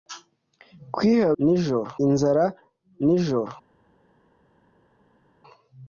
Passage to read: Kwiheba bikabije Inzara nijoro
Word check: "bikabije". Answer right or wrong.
wrong